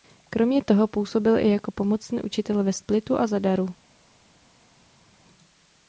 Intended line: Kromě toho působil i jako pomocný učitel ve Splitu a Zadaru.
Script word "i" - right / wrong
right